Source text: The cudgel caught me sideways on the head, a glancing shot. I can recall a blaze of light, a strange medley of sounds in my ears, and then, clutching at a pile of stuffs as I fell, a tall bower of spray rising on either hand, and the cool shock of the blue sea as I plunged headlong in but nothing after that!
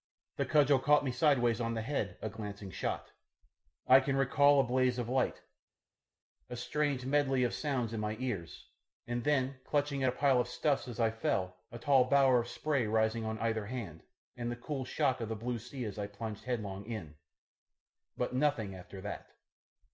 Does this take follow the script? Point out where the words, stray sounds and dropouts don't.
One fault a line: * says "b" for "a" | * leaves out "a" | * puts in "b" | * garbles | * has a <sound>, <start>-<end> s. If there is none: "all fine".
all fine